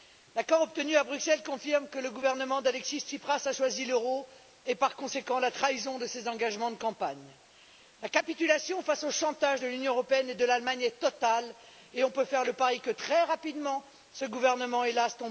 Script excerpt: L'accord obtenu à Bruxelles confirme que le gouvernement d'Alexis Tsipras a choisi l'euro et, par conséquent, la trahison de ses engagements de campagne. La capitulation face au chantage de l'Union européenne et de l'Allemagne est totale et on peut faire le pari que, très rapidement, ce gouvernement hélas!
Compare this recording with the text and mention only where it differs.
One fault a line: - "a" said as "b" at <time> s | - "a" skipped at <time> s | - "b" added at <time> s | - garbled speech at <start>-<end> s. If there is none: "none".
none